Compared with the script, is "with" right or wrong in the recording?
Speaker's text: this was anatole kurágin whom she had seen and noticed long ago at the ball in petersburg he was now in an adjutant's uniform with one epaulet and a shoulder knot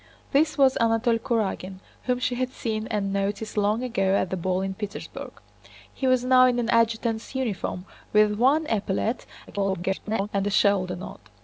right